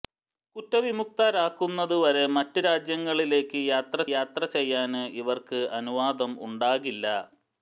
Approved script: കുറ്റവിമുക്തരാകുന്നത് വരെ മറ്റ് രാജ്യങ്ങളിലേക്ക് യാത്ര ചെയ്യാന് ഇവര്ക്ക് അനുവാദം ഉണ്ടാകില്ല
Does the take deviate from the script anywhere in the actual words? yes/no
yes